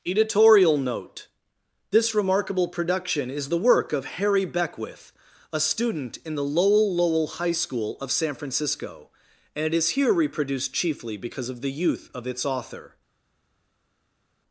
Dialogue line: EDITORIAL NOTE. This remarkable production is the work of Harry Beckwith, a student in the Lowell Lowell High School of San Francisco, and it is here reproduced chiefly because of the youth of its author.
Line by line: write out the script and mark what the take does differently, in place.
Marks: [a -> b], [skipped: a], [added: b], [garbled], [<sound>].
EDITORIAL NOTE. This remarkable production is the work of Harry Beckwith, a student in the Lowell Lowell High School of San Francisco, and it is here reproduced chiefly because of the youth of its author.